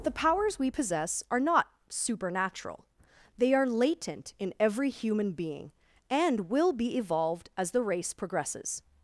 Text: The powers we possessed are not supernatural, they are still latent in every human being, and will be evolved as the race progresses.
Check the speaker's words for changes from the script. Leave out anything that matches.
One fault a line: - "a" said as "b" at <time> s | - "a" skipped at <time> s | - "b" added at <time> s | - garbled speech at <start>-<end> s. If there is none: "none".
- "possessed" said as "possess" at 0.7 s
- "still" skipped at 3.7 s